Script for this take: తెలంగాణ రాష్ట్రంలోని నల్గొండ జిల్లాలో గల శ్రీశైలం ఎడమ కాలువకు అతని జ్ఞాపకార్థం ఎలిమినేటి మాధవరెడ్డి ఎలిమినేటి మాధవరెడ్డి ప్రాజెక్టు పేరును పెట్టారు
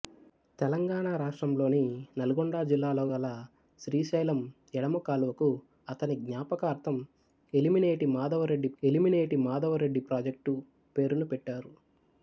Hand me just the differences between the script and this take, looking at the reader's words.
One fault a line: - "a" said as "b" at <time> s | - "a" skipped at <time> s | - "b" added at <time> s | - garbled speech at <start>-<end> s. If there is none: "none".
none